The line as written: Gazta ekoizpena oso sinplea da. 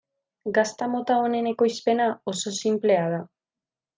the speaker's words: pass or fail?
fail